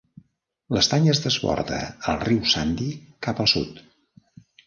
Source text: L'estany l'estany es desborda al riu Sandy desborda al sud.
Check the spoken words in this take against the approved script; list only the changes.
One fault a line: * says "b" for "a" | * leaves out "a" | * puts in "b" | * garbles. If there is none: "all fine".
* leaves out "l'estany"
* says "cap" for "desborda"